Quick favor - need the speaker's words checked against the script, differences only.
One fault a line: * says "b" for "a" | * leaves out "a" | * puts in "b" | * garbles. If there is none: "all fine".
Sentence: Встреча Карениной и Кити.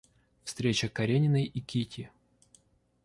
all fine